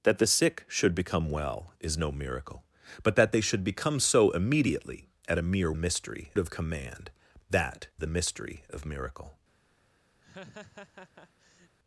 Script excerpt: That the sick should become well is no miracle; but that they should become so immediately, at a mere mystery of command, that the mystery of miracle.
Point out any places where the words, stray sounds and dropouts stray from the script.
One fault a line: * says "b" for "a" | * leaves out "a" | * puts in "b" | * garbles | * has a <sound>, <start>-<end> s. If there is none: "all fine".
* has a laugh, 10.2-11.8 s